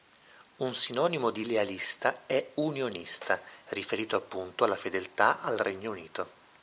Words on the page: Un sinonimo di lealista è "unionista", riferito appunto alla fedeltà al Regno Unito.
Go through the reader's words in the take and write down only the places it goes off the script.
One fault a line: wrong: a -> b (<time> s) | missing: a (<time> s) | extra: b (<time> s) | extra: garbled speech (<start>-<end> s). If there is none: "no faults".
no faults